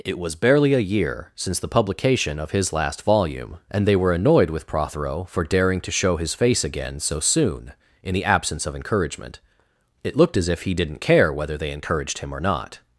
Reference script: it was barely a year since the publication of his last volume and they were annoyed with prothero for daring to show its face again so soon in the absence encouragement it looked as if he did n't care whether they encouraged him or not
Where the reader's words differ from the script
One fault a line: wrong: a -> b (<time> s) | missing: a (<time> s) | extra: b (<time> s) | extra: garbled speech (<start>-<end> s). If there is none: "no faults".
wrong: its -> his (6.2 s)
extra: of (8.6 s)